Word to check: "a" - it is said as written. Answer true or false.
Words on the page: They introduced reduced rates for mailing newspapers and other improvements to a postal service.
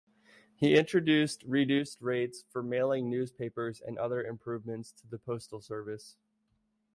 false